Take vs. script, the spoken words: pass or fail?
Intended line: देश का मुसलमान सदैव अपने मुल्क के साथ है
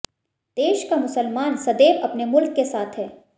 pass